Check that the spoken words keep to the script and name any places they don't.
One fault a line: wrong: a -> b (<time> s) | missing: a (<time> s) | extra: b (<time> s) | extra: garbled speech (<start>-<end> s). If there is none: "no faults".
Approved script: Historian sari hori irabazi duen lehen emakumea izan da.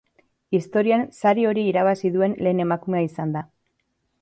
no faults